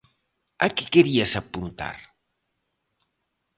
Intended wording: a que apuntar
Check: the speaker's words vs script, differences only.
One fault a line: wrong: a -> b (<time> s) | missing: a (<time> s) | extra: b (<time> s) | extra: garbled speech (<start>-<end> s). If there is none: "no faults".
extra: querías (0.9 s)